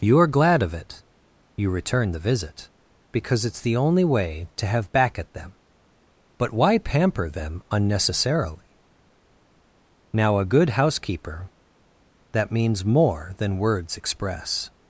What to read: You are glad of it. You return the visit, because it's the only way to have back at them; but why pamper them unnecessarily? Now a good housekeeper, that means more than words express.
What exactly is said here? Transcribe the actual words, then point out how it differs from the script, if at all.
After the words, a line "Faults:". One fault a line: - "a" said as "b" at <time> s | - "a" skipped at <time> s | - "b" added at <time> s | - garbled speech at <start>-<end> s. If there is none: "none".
You are glad of it. You return the visit, because it's the only way to have back at them; but why pamper them unnecessarily? Now a good housekeeper, that means more than words express.
Faults:
none